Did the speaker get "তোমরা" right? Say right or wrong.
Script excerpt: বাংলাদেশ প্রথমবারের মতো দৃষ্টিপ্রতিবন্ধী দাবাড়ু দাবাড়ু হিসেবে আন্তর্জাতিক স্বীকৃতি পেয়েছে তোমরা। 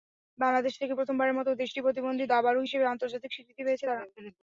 wrong